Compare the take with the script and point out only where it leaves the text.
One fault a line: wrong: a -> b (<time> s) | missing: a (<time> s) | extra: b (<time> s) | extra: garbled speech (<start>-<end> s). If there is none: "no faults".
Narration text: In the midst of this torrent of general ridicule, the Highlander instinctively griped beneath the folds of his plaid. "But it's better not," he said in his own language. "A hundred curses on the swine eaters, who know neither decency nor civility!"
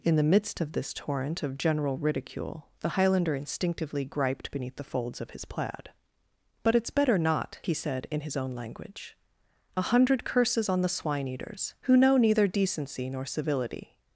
no faults